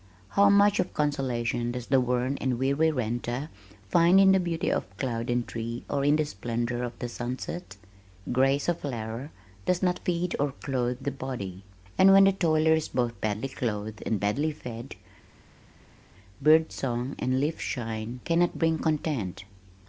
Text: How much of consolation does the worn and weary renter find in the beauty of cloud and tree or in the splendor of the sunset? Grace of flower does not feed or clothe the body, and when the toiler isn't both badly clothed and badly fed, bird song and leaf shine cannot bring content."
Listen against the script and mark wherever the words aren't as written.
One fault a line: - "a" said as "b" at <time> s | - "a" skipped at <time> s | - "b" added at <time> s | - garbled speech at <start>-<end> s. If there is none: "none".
- "isn't" said as "is" at 12.7 s